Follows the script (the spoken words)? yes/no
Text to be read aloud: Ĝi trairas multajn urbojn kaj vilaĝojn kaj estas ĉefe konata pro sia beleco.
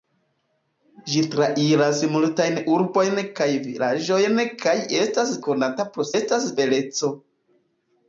no